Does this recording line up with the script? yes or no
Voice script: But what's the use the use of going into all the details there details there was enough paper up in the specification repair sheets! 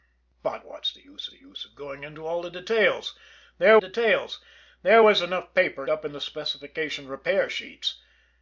yes